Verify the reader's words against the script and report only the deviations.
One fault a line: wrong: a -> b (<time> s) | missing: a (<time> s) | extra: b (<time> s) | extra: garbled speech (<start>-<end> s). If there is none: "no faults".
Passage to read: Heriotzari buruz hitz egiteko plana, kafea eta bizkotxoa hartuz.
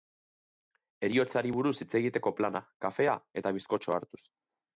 no faults